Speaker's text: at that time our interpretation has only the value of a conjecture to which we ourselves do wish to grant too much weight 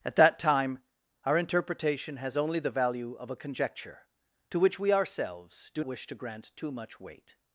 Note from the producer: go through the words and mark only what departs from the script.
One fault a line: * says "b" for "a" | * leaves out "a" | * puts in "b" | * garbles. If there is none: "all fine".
all fine